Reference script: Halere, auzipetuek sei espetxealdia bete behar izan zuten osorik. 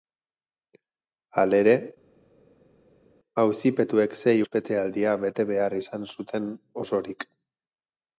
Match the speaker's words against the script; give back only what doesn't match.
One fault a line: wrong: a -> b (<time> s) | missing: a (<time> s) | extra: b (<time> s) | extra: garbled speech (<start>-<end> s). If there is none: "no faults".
no faults